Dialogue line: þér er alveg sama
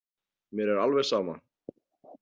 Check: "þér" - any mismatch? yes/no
yes